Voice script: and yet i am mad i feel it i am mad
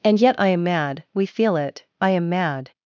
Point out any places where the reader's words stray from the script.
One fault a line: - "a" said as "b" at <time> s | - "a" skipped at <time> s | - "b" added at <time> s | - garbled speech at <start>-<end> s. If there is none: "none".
- "i" said as "we" at 1.1 s